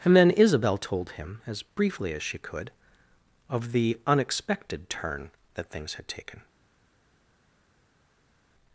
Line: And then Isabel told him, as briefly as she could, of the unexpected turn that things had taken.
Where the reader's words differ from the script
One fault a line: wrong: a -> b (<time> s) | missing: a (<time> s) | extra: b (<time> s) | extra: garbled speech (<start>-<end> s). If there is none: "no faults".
no faults